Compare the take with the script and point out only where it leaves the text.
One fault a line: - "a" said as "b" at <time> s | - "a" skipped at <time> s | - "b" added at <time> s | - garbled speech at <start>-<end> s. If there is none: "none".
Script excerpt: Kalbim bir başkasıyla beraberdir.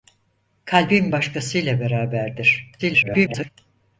- "bir" skipped at 1.1 s
- garbled speech at 2.8-3.5 s